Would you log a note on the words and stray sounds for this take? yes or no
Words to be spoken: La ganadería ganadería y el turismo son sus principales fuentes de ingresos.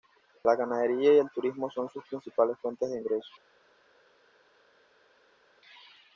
yes